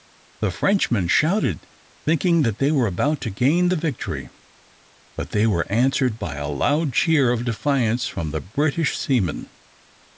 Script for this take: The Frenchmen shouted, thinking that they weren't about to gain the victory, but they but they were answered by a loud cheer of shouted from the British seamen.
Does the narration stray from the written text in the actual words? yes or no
yes